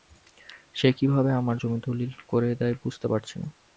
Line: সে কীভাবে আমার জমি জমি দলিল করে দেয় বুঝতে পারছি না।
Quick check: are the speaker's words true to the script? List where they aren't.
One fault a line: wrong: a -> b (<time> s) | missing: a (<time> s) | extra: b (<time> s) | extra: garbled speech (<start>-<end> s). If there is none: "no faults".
missing: জমি (1.8 s)